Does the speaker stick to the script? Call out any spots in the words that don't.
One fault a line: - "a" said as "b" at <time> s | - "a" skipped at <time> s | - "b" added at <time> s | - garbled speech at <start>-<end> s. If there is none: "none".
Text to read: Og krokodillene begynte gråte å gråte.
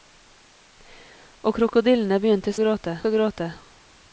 none